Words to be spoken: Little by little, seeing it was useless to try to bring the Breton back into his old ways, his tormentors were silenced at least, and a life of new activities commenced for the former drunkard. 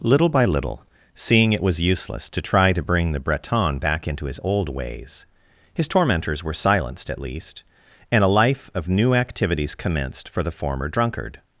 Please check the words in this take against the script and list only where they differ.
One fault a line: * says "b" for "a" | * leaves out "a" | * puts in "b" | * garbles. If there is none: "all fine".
all fine